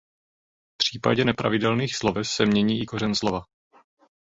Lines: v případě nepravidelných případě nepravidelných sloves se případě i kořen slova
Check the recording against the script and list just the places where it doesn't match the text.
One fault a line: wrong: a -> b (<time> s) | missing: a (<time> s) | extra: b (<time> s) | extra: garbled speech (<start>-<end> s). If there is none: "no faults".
missing: případě nepravidelných (1.9 s)
wrong: případě -> mění (2.4 s)